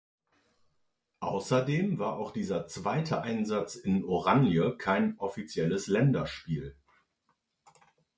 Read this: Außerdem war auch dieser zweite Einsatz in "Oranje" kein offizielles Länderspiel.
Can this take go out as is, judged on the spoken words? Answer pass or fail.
pass